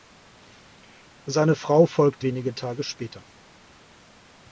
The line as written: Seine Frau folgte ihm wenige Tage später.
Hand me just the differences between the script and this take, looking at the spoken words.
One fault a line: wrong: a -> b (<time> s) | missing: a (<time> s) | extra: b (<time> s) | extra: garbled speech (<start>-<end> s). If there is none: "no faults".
missing: ihm (2.3 s)